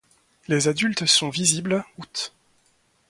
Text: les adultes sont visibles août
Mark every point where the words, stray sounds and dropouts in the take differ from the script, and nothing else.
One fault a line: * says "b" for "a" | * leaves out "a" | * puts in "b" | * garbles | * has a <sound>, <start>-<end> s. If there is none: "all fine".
all fine